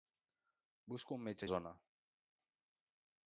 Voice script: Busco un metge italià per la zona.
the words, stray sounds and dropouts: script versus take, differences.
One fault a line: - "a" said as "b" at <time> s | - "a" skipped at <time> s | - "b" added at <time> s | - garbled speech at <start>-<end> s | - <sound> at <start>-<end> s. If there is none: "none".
- "italià per la" skipped at 1.4 s